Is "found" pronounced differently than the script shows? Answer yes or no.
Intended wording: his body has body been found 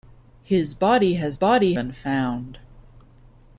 no